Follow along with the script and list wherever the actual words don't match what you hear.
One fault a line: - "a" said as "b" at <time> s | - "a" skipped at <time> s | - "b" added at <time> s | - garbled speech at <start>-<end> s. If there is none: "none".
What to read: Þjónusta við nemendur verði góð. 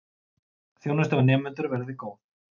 none